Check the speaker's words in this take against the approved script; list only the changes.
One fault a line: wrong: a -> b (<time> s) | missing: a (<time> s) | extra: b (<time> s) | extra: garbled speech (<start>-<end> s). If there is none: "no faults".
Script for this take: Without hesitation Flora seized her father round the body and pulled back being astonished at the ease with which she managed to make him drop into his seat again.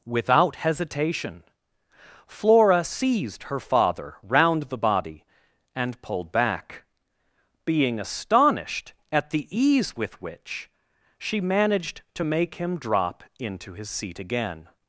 no faults